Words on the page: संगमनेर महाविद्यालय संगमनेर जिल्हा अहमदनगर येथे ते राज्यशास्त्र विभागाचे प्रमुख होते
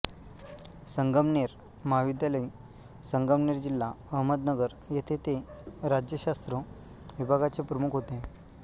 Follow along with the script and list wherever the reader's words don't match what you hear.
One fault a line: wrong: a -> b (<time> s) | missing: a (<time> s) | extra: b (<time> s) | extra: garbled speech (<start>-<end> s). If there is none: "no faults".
no faults